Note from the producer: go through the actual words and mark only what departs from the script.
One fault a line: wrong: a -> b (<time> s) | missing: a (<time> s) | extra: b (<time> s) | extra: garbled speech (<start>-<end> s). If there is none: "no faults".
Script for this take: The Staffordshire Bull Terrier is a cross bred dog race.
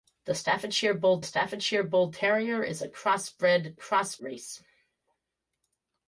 extra: Staffordshire Bull (1.2 s)
wrong: dog -> cross (3.7 s)